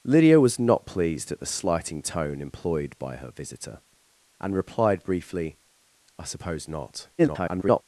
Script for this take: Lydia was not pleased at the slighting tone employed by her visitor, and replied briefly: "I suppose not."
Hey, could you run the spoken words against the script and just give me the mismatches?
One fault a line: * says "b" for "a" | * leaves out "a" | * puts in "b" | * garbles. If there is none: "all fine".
* garbles